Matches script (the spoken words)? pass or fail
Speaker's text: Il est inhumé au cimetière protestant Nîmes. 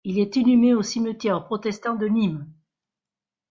fail